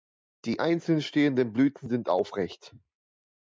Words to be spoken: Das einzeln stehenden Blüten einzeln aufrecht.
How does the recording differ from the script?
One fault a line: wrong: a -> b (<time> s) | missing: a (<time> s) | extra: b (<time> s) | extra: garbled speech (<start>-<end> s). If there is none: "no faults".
wrong: Das -> Die (0.5 s)
wrong: einzeln -> sind (1.9 s)